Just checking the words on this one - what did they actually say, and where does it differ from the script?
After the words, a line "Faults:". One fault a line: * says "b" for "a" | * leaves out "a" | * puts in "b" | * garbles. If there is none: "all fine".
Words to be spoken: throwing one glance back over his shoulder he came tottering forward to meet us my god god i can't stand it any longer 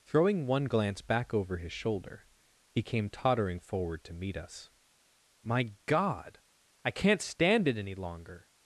throwing one glance back over his shoulder he came tottering forward to meet us my god i can't stand it any longer
Faults:
* leaves out "god"